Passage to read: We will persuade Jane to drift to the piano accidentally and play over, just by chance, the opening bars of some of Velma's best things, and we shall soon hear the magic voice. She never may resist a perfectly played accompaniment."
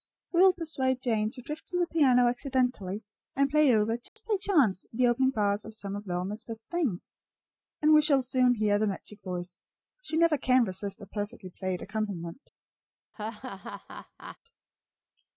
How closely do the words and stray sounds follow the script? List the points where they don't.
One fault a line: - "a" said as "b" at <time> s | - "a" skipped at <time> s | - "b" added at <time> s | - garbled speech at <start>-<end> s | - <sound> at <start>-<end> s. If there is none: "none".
- dropout at 4.1-4.2 s
- "may" said as "can" at 10.4 s
- laugh at 13.1-14.4 s